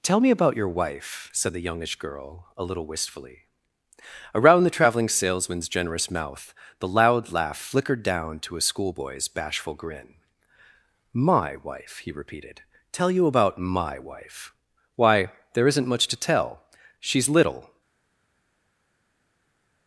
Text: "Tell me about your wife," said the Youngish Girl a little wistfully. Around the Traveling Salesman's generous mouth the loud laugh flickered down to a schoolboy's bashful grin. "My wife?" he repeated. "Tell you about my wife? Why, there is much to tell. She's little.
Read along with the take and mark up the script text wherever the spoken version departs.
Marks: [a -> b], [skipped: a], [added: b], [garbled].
"Tell me about your wife," said the Youngish Girl a little wistfully. Around the Traveling Salesman's generous mouth the loud laugh flickered down to a schoolboy's bashful grin. "My wife?" he repeated. "Tell you about my wife? Why, there [is -> isn't] much to tell. She's little.